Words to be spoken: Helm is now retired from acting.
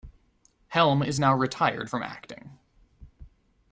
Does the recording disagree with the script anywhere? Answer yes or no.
no